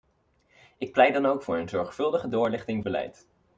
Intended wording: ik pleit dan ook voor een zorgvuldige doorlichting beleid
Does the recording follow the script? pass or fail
pass